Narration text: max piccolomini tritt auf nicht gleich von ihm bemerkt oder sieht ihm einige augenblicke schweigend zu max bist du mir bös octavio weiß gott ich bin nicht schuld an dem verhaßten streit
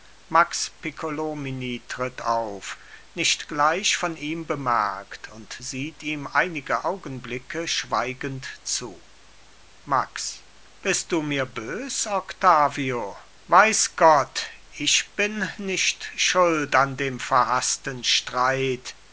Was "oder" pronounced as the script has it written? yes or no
no